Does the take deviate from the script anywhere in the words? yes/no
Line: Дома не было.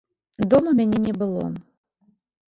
yes